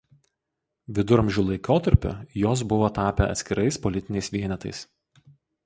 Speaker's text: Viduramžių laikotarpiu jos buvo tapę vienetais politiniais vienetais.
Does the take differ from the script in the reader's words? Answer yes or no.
yes